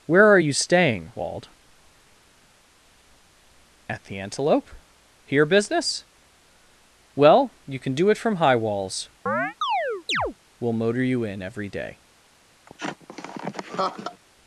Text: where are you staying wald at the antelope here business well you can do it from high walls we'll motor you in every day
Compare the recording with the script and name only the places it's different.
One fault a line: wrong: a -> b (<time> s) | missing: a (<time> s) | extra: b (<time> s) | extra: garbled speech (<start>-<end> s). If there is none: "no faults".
no faults